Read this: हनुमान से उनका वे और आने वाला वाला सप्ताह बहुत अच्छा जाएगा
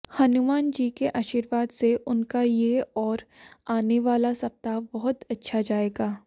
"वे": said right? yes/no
no